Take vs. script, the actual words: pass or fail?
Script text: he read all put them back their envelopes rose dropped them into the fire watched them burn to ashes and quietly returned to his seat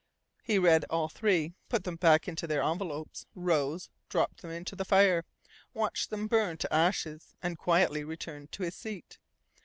fail